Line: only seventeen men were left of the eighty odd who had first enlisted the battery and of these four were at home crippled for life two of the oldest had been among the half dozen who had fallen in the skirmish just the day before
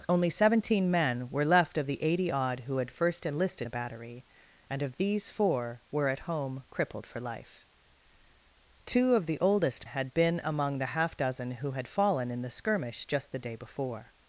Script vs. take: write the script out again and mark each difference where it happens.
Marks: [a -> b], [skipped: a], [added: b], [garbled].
only seventeen men were left of the eighty odd who had first enlisted the battery and of these four were at home crippled for life two of the oldest had been among the half dozen who had fallen in the skirmish just the day before